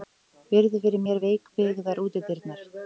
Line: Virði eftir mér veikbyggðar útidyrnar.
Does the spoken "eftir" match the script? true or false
false